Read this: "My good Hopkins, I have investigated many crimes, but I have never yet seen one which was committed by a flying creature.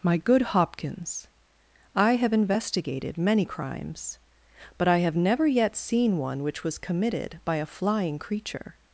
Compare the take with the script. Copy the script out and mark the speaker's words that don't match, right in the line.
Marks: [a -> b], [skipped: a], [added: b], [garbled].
"My good Hopkins, I have investigated many crimes, but I have never yet seen one which was committed by a flying creature.